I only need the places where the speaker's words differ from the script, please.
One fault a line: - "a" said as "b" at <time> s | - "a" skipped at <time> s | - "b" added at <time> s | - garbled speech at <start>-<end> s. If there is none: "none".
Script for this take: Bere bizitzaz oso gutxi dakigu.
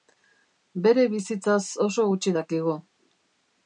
none